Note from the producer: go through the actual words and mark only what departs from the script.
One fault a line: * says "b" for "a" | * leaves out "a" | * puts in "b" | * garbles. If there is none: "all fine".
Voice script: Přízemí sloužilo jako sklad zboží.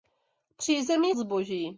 * leaves out "sloužilo jako sklad"